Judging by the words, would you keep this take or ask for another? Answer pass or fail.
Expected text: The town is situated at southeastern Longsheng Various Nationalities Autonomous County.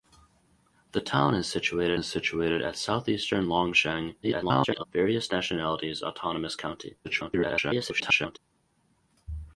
fail